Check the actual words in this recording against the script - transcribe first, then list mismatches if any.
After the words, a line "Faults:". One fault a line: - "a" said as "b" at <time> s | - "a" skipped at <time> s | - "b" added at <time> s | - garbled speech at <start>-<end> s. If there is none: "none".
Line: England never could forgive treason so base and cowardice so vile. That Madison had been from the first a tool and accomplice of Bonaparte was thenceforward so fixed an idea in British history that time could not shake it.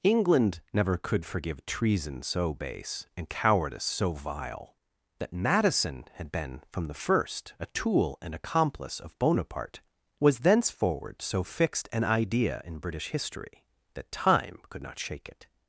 England never could forgive treason so base and cowardice so vile. That Madison had been from the first a tool and accomplice of Bonaparte was thenceforward so fixed an idea in British history that time could not shake it.
Faults:
none